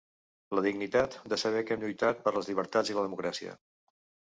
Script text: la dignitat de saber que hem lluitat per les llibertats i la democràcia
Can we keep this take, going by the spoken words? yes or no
yes